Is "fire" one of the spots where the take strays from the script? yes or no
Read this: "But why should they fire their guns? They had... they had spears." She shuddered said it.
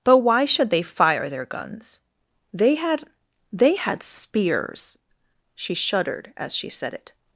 no